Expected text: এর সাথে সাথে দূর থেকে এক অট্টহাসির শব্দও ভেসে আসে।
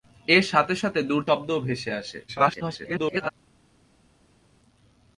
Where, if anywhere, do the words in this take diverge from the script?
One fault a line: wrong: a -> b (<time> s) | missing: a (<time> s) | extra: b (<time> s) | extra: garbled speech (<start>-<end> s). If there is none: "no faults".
missing: থেকে এক অট্টহাসির (1.2 s)
extra: garbled speech (2.3-3.3 s)